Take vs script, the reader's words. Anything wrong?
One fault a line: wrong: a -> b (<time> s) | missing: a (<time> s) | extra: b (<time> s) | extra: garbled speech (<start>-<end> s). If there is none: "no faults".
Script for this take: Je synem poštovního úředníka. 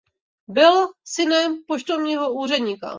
wrong: Je -> Byl (0.5 s)